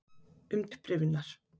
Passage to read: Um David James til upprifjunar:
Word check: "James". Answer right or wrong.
wrong